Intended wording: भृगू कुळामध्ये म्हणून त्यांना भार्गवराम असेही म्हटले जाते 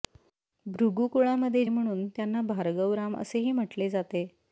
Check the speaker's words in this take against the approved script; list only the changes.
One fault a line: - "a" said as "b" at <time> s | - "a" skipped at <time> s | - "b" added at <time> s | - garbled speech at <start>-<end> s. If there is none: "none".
none